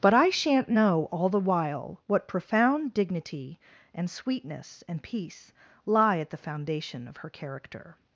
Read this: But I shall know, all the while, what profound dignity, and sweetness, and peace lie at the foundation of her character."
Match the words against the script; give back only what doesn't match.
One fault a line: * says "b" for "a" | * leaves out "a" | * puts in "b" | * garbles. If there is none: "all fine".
* says "shan't" for "shall"